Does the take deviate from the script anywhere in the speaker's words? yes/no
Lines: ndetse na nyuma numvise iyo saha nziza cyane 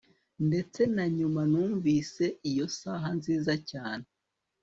no